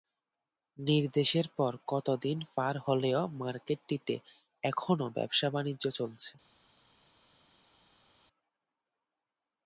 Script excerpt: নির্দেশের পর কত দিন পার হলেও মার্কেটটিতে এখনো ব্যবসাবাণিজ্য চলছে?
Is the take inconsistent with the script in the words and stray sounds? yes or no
no